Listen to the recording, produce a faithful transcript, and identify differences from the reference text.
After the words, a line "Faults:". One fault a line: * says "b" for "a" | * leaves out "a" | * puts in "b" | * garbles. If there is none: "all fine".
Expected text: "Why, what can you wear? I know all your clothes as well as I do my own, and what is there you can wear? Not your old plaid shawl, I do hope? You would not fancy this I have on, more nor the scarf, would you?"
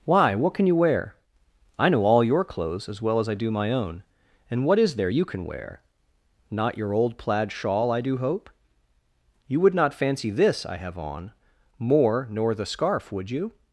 "Why, what can you wear? I know all your clothes as well as I do my own, and what is there you can wear? Not your old plaid shawl, I do hope? You would not fancy this I have on, more nor the scarf, would you?"
Faults:
all fine